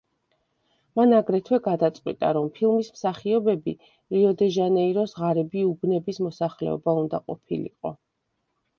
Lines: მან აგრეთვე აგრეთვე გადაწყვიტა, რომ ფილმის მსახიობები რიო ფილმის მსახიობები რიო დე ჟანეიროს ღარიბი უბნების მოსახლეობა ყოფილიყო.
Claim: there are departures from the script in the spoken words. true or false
true